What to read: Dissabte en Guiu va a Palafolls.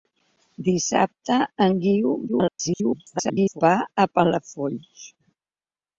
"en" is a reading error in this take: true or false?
false